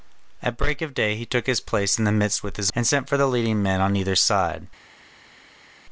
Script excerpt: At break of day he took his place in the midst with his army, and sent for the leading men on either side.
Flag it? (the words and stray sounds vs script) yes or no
yes